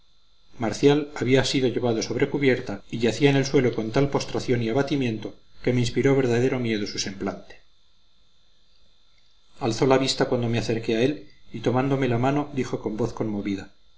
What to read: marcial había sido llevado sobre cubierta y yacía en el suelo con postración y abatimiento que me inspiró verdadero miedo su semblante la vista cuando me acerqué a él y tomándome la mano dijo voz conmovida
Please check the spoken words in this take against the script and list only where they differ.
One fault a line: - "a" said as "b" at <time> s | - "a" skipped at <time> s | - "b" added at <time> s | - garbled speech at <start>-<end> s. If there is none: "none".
- "tal" added at 3.9 s
- "alzó" added at 9.6 s
- "con" added at 12.8 s